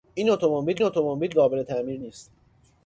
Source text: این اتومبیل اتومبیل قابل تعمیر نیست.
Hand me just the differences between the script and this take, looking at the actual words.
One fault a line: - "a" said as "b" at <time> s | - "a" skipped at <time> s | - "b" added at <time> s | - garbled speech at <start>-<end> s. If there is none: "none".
none